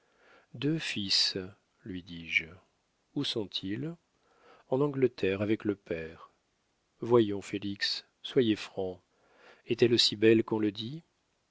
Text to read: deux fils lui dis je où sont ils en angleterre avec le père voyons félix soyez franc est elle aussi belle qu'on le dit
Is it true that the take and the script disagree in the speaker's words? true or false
false